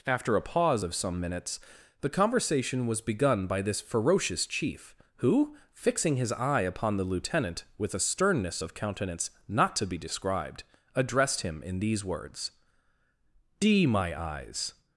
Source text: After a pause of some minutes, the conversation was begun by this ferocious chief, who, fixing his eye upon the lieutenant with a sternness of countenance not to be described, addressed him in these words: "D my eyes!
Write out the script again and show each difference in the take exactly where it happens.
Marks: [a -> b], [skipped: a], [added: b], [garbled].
After a pause of some minutes, the conversation was begun by this ferocious chief, who, fixing his eye upon the lieutenant with a sternness of countenance not to be described, addressed him in these words: "D my eyes!